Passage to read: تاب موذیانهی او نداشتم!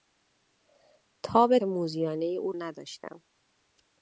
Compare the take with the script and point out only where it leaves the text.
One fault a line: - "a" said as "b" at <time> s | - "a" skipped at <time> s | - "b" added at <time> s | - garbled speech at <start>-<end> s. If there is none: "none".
none